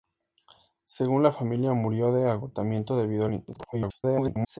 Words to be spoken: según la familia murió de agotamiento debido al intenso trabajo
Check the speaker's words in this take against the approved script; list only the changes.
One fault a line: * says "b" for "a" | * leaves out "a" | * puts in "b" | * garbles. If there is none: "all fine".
* garbles